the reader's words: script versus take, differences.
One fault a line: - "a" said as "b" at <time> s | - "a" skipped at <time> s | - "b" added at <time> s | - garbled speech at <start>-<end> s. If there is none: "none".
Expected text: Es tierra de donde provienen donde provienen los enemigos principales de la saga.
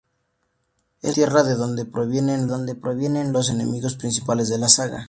none